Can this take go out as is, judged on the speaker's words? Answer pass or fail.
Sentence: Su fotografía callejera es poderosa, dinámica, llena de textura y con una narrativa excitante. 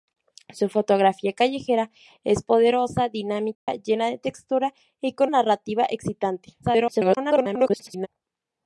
fail